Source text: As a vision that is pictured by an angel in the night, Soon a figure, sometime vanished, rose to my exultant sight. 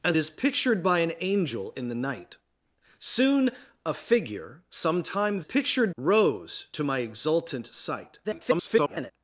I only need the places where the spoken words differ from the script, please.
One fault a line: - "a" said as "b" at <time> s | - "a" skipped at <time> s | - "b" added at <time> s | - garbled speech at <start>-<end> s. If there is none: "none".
- "a vision that" skipped at 0.2 s
- "vanished" said as "pictured" at 5.4 s
- garbled speech at 8.2-9.1 s